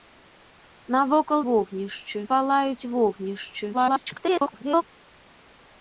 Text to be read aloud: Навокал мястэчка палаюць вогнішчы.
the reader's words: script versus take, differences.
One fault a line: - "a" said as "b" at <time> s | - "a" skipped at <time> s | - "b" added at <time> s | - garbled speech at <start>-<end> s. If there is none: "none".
- "мястэчка" said as "вогнішчы" at 1.5 s
- garbled speech at 3.7-4.8 s